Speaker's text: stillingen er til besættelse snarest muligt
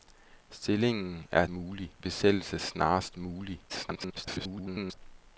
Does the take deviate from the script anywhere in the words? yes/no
yes